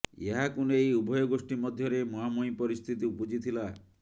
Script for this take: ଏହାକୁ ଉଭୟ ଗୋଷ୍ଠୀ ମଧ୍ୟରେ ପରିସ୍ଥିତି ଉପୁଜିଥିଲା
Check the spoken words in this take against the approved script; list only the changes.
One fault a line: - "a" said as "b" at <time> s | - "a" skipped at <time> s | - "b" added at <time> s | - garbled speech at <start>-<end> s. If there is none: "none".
- "ନେଇ" added at 0.7 s
- "ମୁହାଁମୁହିଁ" added at 2.1 s